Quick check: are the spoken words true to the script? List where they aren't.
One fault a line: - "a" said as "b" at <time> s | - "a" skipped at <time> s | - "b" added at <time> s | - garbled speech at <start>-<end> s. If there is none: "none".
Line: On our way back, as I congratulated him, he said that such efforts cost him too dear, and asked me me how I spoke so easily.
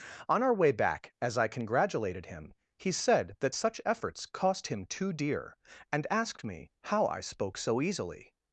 - "me" skipped at 6.7 s